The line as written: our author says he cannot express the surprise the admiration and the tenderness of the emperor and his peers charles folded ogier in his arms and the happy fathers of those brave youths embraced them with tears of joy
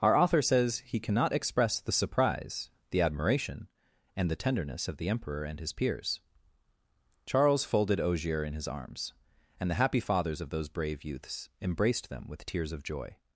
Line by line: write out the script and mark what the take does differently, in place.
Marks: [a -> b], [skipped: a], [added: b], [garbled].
our author says he cannot express the surprise the admiration and the tenderness of the emperor and his peers charles folded ogier in his arms and the happy fathers of those brave youths embraced them with tears of joy